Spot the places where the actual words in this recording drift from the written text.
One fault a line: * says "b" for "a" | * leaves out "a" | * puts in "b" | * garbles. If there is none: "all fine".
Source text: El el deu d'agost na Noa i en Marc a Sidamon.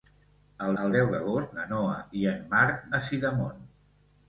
all fine